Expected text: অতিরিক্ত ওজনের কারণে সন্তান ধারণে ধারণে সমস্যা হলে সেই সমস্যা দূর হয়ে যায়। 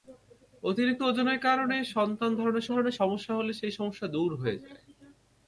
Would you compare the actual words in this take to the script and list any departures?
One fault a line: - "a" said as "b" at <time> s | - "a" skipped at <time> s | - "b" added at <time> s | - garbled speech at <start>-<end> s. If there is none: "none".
none